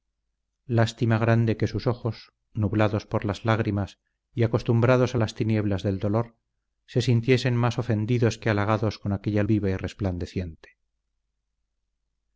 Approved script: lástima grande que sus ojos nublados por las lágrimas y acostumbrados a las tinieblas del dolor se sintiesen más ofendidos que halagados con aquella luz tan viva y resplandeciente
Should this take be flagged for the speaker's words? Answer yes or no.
yes